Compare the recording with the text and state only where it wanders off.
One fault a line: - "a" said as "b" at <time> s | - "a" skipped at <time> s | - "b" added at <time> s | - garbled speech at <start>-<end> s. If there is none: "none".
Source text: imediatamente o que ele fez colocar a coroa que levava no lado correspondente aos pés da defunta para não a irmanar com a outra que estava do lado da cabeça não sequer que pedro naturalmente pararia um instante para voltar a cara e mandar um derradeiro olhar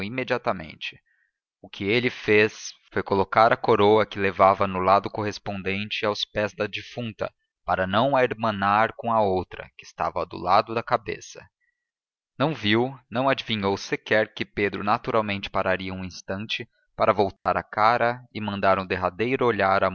- "foi" added at 2.9 s
- "viu não adivinhou" added at 12.5 s